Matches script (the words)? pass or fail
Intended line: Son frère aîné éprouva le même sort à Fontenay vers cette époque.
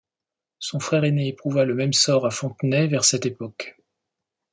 pass